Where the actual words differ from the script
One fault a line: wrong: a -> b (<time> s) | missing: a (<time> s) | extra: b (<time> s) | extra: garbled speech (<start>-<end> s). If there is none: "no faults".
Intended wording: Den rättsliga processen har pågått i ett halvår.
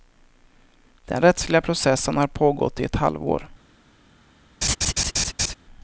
no faults